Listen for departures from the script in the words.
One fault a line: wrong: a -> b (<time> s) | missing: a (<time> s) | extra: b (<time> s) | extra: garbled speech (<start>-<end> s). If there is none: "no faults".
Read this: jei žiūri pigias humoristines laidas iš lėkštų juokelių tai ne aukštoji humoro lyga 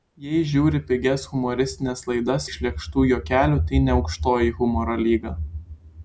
no faults